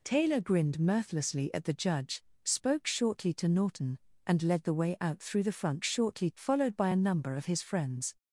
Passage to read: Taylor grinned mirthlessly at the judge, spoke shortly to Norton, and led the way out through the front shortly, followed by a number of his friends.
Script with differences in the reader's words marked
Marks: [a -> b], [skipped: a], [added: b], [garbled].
Taylor grinned mirthlessly at the judge, spoke shortly to Norton, and led the way out through the front shortly, followed by a number of his friends.